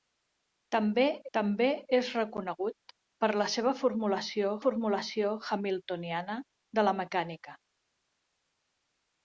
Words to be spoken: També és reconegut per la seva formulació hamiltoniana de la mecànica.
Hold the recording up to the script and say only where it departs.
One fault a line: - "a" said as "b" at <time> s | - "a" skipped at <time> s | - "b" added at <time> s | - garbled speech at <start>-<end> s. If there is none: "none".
- "també" added at 1.4 s
- "formulació" added at 4.6 s